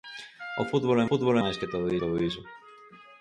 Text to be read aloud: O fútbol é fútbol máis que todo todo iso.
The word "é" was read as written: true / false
true